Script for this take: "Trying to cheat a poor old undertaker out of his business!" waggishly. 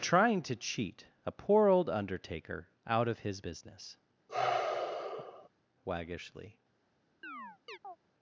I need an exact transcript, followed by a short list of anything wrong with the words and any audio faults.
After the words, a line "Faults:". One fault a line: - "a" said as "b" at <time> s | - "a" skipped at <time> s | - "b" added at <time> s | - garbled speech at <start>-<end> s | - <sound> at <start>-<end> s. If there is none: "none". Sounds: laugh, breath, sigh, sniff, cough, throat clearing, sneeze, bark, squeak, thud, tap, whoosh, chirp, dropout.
"Trying to cheat a poor old undertaker out of his business!" waggishly.
Faults:
- sigh at 4.3-5.5 s
- chirp at 7.2-8.0 s